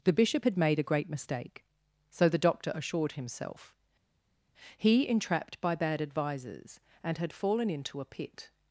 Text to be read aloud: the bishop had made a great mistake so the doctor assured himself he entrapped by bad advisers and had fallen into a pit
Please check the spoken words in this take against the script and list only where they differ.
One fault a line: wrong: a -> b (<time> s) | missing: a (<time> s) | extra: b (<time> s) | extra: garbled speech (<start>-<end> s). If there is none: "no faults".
no faults